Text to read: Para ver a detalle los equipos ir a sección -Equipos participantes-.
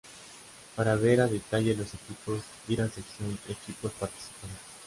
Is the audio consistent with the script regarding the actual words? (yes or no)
yes